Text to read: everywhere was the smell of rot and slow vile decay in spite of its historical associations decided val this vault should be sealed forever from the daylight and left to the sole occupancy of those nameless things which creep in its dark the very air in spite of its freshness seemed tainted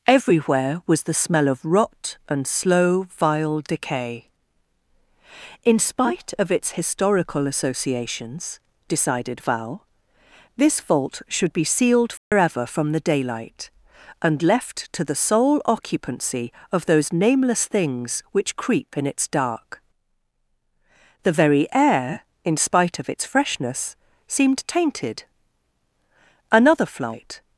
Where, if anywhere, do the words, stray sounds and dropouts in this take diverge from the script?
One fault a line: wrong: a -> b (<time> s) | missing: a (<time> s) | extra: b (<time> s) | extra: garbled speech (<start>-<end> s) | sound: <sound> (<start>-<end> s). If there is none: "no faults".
sound: dropout (12.2-12.3 s)
extra: another flight (26.5 s)